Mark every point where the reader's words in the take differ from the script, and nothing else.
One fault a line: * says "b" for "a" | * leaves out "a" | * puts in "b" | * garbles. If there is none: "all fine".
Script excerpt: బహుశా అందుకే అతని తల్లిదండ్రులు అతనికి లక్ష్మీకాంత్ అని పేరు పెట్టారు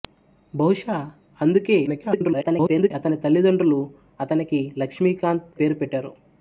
* garbles
* leaves out "అని"